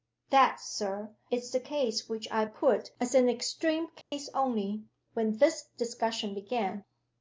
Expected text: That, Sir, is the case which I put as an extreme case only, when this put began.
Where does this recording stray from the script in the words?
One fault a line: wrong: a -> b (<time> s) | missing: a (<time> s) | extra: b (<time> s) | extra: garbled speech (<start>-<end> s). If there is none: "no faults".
wrong: put -> discussion (5.8 s)